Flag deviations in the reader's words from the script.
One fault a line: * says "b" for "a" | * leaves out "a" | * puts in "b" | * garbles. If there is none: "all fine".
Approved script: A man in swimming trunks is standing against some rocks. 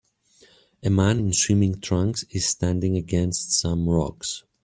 all fine